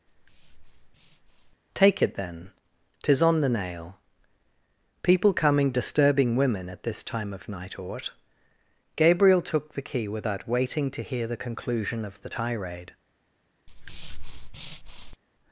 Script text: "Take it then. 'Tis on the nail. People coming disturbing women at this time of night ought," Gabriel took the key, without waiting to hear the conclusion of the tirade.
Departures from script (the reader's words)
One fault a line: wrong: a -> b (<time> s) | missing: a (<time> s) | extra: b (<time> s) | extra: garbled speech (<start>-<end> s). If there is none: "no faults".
no faults